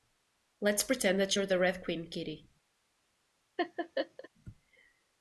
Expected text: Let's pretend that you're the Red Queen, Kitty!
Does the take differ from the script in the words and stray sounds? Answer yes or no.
yes